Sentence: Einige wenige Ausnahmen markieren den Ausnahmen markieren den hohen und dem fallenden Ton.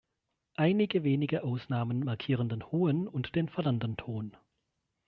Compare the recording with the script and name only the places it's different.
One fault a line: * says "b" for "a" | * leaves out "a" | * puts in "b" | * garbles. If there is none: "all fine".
* leaves out "Ausnahmen markieren den"
* says "den" for "dem"